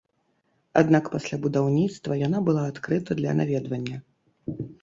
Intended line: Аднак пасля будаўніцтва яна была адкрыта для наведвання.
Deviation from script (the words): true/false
false